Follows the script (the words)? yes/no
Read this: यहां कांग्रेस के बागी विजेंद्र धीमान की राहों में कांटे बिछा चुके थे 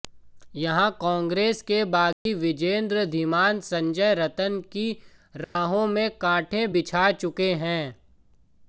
no